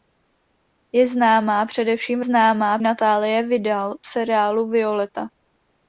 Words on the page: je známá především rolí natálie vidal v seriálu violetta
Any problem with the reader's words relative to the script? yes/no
yes